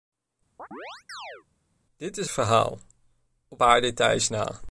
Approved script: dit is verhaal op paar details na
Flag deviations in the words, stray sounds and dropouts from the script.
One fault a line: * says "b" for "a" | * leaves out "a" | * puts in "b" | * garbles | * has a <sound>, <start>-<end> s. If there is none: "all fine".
* has a chirp, 0.6-1.4 s